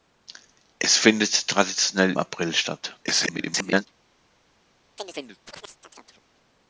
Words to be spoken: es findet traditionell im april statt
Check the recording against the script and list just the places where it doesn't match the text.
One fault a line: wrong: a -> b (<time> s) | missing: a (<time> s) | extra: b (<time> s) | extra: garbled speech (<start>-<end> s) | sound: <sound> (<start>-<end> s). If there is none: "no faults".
missing: im (2.1 s)
extra: garbled speech (3.0-3.9 s)
sound: chirp (5.0-6.2 s)